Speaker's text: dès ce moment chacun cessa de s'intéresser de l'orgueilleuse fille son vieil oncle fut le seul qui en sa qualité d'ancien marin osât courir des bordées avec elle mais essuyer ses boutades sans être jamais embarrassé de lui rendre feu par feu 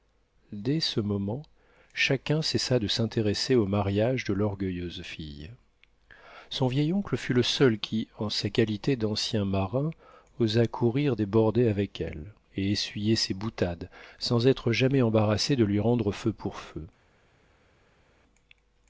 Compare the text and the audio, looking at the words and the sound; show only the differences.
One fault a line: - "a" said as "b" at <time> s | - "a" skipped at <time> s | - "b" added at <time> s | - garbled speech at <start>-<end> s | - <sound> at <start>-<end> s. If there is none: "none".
- "au mariage" added at 3.5 s
- "mais" said as "et" at 12.6 s
- "par" said as "pour" at 16.3 s